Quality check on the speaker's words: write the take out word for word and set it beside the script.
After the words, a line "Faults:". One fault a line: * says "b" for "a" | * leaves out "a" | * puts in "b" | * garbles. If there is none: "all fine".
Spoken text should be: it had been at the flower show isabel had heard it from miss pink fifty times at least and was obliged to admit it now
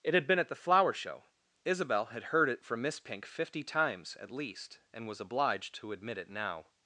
it had been at the flower show isabel had heard it from miss pink fifty times at least and was obliged to admit it now
Faults:
all fine